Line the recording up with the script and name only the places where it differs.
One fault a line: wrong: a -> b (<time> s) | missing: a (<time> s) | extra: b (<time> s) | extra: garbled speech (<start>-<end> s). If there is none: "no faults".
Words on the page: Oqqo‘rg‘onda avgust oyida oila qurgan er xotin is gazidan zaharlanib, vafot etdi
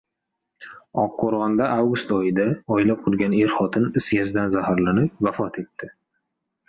no faults